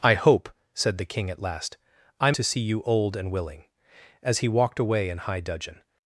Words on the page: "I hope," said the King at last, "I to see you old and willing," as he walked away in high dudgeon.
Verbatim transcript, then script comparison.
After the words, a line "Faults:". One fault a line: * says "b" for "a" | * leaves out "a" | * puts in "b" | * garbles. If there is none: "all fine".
"I hope," said the King at last, "I to see you old and willing," as he walked away in high dudgeon.
Faults:
all fine